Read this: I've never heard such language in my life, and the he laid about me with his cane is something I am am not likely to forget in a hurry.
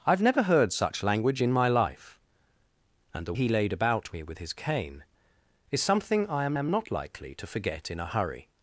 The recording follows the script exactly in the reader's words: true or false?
true